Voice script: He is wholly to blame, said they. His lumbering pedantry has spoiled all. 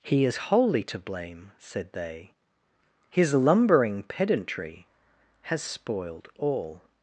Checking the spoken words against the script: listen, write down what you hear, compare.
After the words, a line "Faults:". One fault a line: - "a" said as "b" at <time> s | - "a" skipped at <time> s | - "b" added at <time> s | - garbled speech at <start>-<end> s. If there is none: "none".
He is wholly to blame, said they. His lumbering pedantry has spoiled all.
Faults:
none